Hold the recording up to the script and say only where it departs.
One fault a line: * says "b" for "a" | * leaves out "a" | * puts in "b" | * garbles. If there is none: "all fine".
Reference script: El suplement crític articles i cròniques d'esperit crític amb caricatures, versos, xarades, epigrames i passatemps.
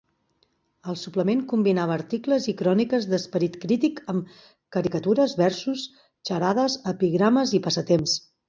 * says "combinava" for "crític"